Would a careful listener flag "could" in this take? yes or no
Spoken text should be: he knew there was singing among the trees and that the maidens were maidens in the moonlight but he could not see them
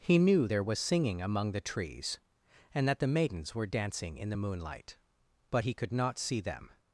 no